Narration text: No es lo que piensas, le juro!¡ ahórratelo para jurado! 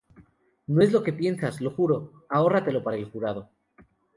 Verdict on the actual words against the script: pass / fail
fail